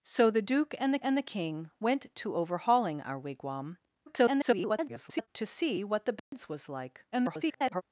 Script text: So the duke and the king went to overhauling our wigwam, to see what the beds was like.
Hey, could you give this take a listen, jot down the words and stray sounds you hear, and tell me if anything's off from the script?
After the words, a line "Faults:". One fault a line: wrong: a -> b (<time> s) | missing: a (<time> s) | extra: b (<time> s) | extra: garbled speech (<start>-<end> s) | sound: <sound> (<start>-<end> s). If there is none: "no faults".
So the duke and the and the king went to overhauling our wigwam, [garbled] to see what the beds was like. [garbled]
Faults:
extra: and the (1.0 s)
extra: garbled speech (4.1-5.3 s)
sound: dropout (6.2-6.3 s)
extra: garbled speech (7.1-7.8 s)